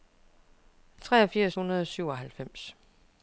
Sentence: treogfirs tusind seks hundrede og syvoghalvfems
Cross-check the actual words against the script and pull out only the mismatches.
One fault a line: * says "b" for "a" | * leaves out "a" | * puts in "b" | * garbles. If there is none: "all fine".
* leaves out "tusind seks"